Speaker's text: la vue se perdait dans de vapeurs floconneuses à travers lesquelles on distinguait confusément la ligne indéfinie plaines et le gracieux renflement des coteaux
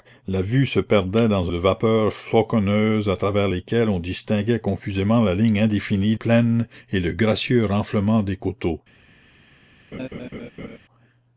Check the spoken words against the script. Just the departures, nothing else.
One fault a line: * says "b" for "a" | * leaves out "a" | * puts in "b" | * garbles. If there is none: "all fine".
all fine